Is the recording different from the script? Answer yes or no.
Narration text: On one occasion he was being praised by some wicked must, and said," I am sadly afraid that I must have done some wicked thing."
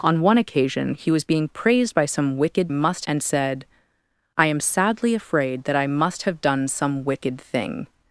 no